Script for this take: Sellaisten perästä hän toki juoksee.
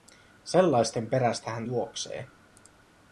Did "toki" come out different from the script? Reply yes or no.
yes